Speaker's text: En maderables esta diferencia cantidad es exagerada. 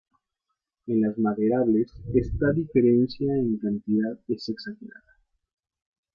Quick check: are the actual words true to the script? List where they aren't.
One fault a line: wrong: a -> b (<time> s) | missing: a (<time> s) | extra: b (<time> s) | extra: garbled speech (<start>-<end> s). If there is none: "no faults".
extra: las (1.0 s)
extra: en (3.3 s)